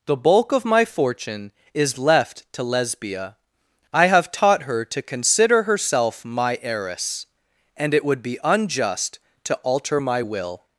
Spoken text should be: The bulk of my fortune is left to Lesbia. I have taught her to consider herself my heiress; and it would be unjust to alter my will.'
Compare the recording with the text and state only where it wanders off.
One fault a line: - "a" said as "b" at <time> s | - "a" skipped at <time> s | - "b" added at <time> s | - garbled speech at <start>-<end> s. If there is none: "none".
none